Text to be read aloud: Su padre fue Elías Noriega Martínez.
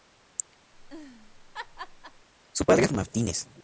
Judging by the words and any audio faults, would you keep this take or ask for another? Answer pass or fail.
fail